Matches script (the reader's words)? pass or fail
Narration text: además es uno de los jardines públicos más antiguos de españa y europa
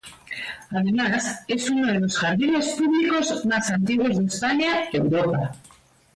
pass